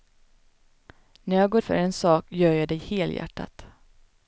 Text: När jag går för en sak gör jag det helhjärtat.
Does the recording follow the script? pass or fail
pass